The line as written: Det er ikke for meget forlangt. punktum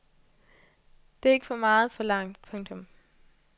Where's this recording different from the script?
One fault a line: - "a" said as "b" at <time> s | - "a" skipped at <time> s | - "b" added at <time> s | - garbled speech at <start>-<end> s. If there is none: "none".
none